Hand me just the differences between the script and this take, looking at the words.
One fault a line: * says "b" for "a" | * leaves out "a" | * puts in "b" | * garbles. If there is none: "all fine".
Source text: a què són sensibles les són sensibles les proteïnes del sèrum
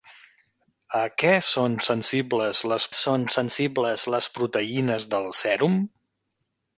all fine